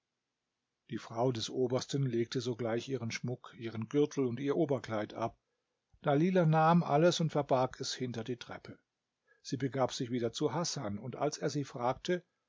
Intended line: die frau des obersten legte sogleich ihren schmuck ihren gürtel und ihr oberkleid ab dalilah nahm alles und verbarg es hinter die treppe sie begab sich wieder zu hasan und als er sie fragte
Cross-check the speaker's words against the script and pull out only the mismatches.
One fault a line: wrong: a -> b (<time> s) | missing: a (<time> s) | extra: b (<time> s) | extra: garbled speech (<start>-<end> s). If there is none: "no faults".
no faults